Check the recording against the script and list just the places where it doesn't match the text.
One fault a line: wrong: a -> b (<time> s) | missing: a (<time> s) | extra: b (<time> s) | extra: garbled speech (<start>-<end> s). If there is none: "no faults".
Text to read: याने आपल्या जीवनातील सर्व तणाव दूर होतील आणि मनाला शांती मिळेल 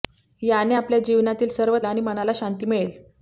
missing: तणाव दूर होतील (1.8 s)